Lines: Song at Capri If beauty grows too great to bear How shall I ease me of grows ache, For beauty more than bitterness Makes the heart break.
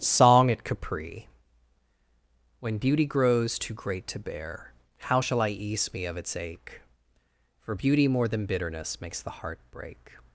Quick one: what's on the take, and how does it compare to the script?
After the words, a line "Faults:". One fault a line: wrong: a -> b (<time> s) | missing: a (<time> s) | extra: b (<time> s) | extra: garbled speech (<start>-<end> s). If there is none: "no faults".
Song at Capri When beauty grows too great to bear How shall I ease me of its ache, For beauty more than bitterness Makes the heart break.
Faults:
wrong: If -> When (2.6 s)
wrong: grows -> its (6.2 s)